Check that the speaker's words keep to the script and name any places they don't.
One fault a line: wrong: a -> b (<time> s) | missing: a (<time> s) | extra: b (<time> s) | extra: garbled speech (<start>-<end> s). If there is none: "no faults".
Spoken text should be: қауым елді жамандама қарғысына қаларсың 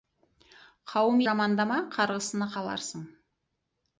missing: елді (1.2 s)